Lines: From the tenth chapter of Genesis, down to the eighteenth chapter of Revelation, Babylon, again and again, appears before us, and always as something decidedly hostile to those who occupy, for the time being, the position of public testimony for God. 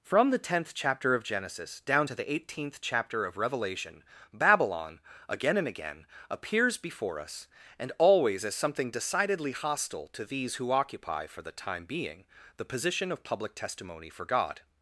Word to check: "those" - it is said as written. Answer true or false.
false